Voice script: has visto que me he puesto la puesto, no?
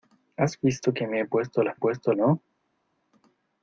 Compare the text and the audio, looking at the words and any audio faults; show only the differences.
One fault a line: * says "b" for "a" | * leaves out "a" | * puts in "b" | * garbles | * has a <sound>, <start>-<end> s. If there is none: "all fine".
all fine